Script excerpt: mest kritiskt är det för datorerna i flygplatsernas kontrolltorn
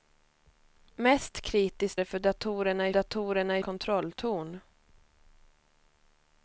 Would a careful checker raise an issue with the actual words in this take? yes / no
yes